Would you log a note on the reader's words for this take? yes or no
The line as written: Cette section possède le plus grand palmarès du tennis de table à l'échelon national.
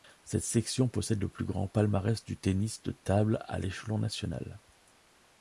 no